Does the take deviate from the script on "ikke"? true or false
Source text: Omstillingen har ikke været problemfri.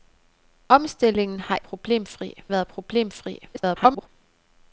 true